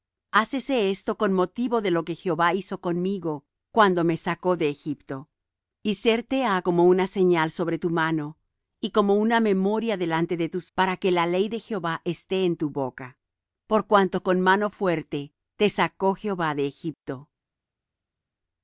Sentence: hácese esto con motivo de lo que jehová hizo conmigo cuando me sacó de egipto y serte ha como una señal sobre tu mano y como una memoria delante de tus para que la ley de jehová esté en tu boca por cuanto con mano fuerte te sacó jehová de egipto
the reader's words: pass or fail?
pass